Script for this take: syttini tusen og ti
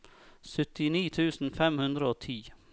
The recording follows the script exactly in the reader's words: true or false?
false